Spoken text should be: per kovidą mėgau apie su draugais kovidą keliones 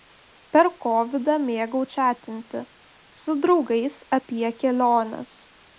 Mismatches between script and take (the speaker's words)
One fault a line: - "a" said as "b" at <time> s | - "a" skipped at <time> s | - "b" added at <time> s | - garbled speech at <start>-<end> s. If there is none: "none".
- "apie" said as "čatinti" at 2.0 s
- "kovidą" said as "apie" at 4.2 s